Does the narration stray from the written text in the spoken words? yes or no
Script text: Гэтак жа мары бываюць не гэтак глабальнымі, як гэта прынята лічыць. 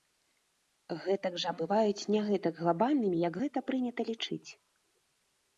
yes